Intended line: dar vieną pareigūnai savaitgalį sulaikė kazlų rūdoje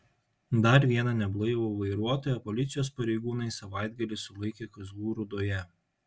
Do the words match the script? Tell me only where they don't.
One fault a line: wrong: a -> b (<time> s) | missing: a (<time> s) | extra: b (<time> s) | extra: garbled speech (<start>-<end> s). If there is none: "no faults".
extra: neblaivų vairuotoją policijos (1.2 s)